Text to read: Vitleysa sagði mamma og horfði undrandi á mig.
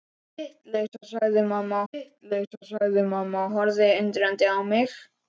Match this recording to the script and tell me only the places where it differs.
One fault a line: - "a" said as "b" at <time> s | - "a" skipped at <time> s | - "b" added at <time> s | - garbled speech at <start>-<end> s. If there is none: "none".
- "vitleysa sagði mamma" added at 1.9 s